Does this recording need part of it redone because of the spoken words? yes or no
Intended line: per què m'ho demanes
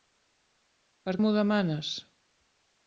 yes